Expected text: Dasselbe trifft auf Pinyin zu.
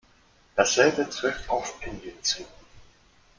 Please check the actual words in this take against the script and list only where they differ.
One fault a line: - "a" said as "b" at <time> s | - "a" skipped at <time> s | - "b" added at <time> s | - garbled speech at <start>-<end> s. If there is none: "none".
none